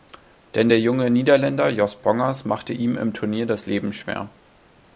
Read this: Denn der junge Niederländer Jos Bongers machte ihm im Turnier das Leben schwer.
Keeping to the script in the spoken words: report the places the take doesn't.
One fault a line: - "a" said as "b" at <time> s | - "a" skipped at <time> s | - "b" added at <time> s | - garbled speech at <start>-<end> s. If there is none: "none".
none